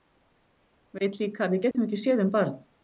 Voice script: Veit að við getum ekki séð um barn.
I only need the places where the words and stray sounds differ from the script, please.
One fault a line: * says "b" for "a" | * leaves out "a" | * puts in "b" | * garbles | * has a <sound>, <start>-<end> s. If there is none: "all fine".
* puts in "líka"
* has a dropout, 1.7-1.7 s